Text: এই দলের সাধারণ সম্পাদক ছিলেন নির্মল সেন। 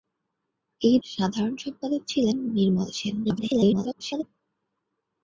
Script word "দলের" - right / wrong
wrong